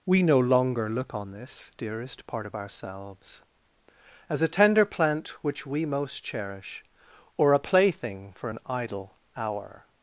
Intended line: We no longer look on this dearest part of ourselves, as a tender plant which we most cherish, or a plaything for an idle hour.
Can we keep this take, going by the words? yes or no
yes